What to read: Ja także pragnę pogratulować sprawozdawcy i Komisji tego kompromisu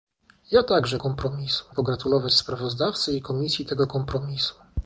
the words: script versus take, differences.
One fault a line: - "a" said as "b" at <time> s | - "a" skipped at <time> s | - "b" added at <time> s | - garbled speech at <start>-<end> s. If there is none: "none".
- "pragnę" said as "kompromisu" at 1.0 s